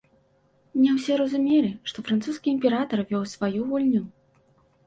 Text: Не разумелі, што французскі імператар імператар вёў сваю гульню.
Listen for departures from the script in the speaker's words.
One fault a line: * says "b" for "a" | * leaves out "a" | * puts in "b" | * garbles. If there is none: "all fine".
* puts in "ўсе"
* leaves out "імператар"